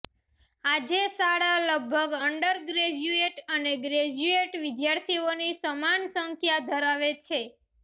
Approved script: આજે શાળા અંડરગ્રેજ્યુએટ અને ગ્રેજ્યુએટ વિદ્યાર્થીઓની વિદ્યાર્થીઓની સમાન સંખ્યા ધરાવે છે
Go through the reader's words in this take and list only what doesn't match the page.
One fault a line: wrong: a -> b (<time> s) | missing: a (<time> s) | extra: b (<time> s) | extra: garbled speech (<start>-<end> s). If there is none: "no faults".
extra: લગભગ (1.6 s)
missing: વિદ્યાર્થીઓની (5.5 s)